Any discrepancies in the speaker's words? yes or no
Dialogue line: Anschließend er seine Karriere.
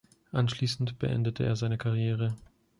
yes